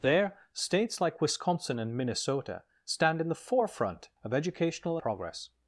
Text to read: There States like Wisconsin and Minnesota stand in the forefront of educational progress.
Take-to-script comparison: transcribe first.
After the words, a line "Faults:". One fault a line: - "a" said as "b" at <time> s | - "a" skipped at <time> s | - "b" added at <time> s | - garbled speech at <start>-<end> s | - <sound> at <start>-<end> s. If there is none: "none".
There States like Wisconsin and Minnesota stand in the forefront of educational progress.
Faults:
none